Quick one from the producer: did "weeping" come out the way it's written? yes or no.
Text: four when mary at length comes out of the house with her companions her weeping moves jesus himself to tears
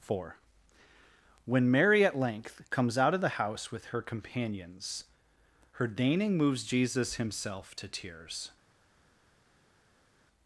no